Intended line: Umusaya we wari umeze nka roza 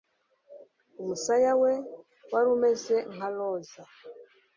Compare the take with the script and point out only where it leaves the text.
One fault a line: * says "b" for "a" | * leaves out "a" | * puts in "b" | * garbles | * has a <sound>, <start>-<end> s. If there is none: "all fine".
all fine